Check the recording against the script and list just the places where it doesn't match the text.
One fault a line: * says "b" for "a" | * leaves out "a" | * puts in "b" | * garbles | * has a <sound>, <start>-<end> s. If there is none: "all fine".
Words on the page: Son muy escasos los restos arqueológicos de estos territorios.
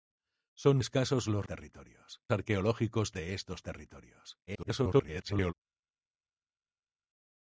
* leaves out "muy"
* says "territorios" for "restos"
* garbles